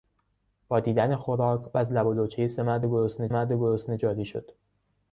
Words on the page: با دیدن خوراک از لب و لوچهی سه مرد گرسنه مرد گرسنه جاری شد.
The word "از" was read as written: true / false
true